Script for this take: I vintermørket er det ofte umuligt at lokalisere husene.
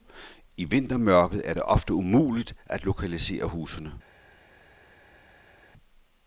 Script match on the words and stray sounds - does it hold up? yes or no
yes